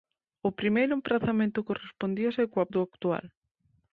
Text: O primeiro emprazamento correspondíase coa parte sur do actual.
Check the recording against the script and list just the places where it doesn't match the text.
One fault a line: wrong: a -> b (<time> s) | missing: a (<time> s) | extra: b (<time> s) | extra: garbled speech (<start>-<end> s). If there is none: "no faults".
missing: parte sur (2.7 s)